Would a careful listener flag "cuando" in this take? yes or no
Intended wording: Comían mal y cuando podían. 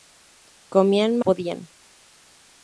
yes